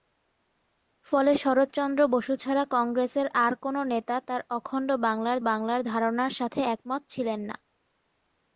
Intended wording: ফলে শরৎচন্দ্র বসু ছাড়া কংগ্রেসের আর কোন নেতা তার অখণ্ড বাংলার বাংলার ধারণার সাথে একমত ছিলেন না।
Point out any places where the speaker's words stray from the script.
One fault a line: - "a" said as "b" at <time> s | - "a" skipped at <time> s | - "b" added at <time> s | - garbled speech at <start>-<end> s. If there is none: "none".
none